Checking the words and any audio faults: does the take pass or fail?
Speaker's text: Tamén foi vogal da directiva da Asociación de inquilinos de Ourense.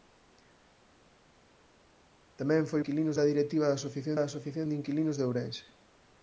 fail